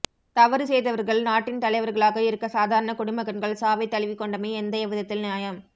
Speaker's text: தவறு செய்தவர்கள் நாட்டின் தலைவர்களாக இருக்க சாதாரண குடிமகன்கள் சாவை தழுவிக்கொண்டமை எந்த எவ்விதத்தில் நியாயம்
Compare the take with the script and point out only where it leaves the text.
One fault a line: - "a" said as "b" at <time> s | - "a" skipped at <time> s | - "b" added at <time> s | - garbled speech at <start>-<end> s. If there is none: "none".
none